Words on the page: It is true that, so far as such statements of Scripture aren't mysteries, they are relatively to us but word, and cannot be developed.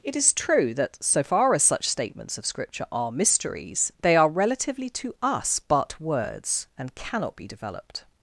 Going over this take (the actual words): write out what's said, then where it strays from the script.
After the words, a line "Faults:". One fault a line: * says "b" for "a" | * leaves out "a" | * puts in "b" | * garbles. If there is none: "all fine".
It is true that, so far as such statements of Scripture are mysteries, they are relatively to us but words, and cannot be developed.
Faults:
* says "are" for "aren't"
* says "words" for "word"